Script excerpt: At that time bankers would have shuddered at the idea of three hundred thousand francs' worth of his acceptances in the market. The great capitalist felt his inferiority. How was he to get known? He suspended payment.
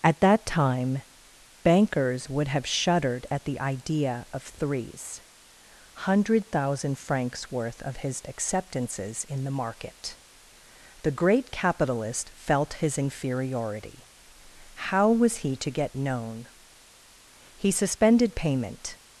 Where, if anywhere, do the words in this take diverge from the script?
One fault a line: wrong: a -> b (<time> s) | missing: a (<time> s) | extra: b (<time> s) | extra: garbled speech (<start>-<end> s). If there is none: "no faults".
wrong: three -> threes (4.4 s)